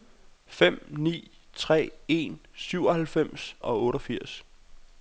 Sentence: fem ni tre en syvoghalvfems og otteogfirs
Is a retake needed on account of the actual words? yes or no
no